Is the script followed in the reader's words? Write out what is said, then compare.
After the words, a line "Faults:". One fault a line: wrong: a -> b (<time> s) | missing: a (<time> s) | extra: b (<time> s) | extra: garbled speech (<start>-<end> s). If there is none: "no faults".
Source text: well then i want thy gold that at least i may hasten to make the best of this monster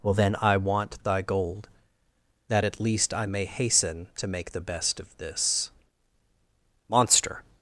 well then i want thy gold that at least i may hasten to make the best of this monster
Faults:
no faults